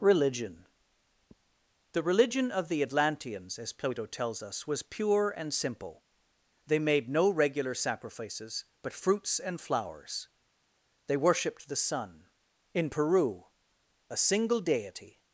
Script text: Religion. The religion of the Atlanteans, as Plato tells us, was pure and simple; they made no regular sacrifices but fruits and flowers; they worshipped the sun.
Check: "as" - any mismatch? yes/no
no